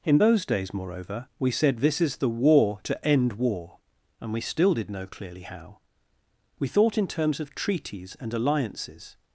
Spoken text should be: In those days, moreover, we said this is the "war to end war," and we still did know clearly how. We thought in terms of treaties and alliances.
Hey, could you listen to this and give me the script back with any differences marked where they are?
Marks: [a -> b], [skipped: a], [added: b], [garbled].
In those days, moreover, we said this is the "war to end war," and we still did know clearly how. We thought in terms of treaties and alliances.